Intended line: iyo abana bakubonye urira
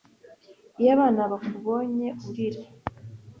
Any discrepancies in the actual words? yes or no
no